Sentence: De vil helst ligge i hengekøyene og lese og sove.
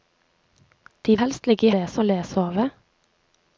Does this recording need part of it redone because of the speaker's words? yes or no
yes